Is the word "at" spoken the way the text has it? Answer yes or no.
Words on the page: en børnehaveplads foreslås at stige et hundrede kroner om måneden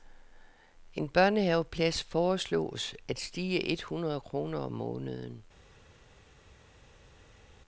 yes